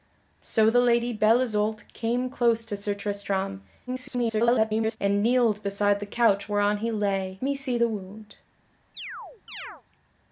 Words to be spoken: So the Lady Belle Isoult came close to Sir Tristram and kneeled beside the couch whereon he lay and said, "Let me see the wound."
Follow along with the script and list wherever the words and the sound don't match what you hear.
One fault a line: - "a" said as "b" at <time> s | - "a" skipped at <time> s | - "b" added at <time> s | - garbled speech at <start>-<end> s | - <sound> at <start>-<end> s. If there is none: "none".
- garbled speech at 3.9-5.0 s
- "and said Let" skipped at 7.4 s
- chirp at 8.9-9.8 s